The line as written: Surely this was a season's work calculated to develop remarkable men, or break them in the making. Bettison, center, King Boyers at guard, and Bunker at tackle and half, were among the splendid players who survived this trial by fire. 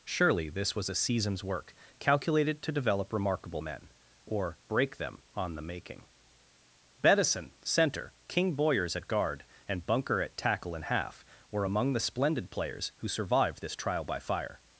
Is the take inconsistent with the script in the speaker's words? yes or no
yes